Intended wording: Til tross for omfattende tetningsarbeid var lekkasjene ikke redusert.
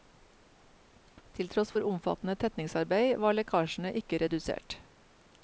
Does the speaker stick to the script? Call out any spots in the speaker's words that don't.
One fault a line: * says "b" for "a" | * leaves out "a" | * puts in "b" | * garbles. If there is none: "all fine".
all fine